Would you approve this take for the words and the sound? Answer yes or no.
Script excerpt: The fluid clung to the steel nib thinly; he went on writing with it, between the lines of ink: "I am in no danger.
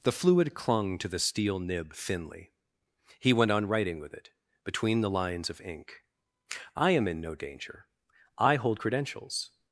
no